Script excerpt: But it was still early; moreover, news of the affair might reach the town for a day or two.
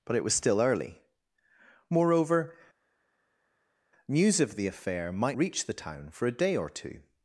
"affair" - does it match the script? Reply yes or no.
yes